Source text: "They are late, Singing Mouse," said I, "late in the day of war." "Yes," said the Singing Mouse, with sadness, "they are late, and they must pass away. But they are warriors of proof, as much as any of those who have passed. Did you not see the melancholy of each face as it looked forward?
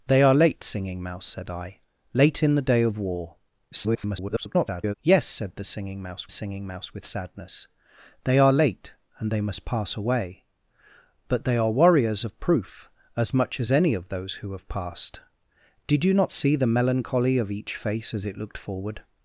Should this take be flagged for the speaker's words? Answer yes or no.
yes